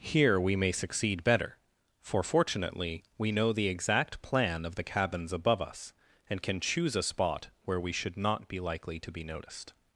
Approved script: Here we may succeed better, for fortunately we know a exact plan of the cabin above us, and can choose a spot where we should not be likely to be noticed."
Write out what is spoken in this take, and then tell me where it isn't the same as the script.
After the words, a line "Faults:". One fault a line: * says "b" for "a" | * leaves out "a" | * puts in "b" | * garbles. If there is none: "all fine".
Here we may succeed better, for fortunately we know the exact plan of the cabins above us, and can choose a spot where we should not be likely to be noticed."
Faults:
* says "the" for "a"
* says "cabins" for "cabin"